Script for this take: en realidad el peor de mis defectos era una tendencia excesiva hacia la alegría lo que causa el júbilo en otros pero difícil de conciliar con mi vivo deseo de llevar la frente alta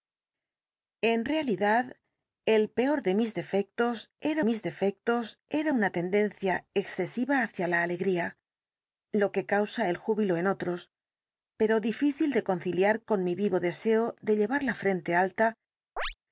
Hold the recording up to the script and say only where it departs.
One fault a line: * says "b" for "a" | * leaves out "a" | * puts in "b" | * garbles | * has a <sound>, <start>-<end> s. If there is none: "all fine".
* puts in "mis defectos era"
* has a chirp, 16.0-16.1 s